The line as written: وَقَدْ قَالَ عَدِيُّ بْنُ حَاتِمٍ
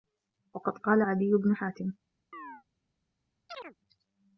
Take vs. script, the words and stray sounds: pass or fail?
fail